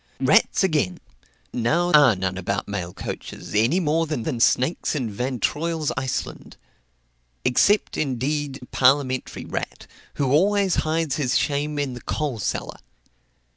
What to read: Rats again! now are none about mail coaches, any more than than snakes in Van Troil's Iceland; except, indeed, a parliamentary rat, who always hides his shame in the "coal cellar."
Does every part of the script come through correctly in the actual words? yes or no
yes